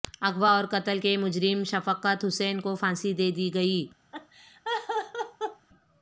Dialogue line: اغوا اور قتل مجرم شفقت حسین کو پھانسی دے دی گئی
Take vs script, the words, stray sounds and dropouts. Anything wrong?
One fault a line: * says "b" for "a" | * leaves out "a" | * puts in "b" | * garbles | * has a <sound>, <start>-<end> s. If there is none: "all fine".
* puts in "کے"
* has a laugh, 4.1-5.7 s